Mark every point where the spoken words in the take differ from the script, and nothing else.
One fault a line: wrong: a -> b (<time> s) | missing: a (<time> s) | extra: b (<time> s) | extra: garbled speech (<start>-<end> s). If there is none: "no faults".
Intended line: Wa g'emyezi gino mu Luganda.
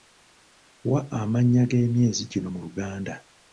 extra: amannya (1.2 s)